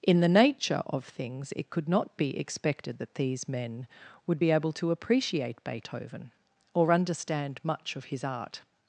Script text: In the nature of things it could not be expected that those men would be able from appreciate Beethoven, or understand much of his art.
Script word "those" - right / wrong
wrong